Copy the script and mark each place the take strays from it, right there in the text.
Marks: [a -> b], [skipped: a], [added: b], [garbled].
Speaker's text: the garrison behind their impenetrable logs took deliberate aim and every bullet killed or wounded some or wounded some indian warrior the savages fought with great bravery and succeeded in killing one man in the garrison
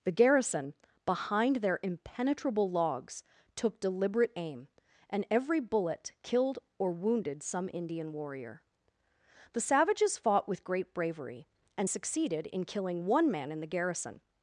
the garrison behind their impenetrable logs took deliberate aim and every bullet killed or wounded some [skipped: or wounded some] indian warrior the savages fought with great bravery and succeeded in killing one man in the garrison